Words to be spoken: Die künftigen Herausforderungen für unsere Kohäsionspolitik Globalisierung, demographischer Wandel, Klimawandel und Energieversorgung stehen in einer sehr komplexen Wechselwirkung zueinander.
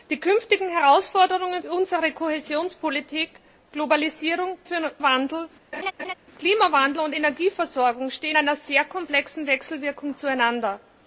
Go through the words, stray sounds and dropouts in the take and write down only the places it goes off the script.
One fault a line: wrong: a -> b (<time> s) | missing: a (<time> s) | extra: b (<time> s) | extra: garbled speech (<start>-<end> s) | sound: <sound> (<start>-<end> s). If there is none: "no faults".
missing: für (1.6 s)
wrong: demographischer -> für (4.7 s)
sound: laugh (5.7-6.1 s)
missing: in (8.4 s)